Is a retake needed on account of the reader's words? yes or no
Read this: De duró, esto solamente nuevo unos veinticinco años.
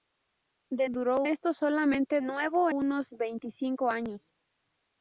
no